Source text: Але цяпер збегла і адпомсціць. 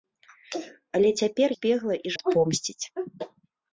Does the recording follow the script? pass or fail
pass